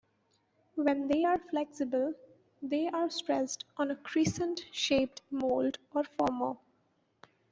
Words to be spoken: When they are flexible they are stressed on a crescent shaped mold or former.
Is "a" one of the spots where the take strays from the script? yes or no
no